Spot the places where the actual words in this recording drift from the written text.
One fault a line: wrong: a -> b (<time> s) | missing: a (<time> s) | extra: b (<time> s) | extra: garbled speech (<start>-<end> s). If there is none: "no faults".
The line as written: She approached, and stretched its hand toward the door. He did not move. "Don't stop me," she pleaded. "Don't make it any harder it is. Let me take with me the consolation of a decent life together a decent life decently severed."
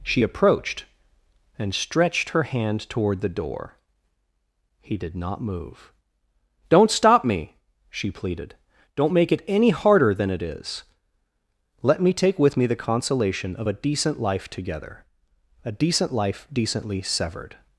wrong: its -> her (2.3 s)
extra: than (10.1 s)